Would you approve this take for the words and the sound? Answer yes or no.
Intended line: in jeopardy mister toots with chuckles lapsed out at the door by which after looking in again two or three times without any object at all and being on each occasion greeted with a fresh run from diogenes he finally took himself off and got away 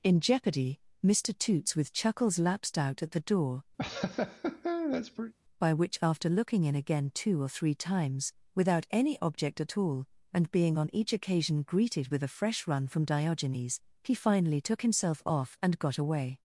no